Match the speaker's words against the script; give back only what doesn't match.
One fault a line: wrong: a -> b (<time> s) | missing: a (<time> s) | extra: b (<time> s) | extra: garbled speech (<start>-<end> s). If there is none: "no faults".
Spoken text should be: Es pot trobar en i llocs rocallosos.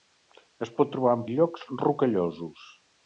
no faults